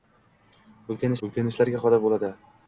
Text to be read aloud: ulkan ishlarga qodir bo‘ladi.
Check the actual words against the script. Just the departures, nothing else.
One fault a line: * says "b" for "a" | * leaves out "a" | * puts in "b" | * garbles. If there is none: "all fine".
* puts in "ulkan"